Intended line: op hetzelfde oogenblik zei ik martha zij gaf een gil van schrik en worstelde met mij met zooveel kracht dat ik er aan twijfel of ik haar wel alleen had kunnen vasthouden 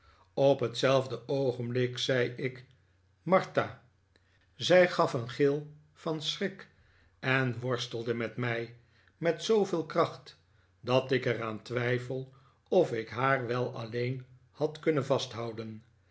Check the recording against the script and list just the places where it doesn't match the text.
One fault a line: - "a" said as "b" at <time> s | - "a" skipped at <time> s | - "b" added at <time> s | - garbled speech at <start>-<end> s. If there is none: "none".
none